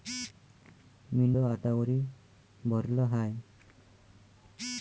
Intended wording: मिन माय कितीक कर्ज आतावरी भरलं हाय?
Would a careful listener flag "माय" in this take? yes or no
yes